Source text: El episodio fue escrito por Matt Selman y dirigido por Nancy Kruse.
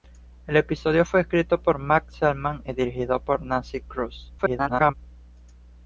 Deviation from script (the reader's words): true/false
true